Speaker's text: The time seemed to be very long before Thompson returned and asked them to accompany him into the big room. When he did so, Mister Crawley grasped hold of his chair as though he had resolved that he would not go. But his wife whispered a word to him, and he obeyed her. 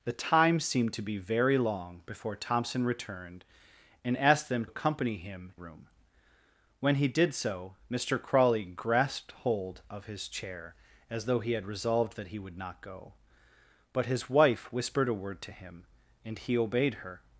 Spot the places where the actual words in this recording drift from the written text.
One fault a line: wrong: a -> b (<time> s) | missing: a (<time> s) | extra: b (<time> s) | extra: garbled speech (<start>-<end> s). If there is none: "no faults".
missing: to (4.7 s)
missing: into the big (5.5 s)